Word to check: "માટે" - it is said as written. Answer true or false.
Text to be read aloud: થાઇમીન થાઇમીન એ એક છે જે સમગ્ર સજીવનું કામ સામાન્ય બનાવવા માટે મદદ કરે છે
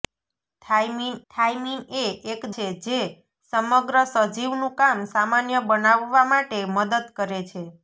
true